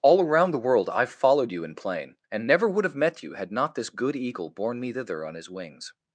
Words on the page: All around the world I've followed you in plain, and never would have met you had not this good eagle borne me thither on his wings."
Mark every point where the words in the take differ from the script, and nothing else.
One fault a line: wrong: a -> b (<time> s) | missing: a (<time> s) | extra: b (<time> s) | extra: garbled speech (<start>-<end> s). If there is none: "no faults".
no faults